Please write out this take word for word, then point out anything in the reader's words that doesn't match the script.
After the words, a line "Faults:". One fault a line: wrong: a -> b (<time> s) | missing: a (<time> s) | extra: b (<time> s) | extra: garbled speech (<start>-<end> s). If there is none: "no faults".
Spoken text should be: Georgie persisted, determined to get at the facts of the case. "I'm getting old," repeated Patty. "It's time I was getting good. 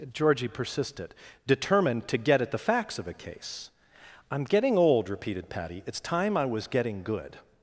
Georgie persisted, determined to get at the facts of a case. "I'm getting old," repeated Patty. "It's time I was getting good.
Faults:
wrong: the -> a (3.1 s)